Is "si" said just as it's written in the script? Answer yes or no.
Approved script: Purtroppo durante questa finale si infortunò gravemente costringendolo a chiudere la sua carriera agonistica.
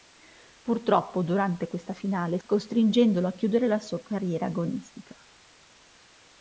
no